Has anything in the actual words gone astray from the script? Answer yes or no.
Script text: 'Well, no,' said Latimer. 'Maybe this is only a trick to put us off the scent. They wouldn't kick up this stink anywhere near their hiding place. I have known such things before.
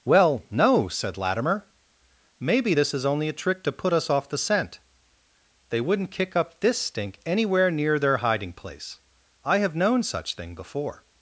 yes